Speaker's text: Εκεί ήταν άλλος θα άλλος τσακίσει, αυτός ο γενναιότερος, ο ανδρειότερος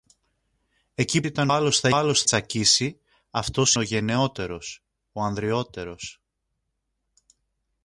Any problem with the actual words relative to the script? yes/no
no